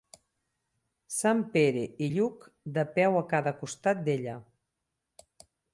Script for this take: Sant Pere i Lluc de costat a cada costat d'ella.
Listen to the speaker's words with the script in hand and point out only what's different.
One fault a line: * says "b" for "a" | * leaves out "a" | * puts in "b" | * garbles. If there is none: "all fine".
* says "peu" for "costat"